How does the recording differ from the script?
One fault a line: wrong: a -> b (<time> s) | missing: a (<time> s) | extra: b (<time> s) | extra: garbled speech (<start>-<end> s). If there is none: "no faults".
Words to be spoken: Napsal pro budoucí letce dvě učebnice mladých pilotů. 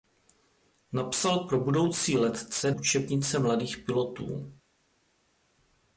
missing: dvě (2.7 s)